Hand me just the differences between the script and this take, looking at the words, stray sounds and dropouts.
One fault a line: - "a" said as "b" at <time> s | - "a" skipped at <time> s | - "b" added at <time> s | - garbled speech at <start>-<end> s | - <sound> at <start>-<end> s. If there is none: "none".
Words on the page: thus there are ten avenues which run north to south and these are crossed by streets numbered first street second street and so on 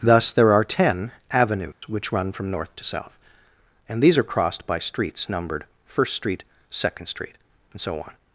- dropout at 1.7-1.8 s
- "from" added at 2.3 s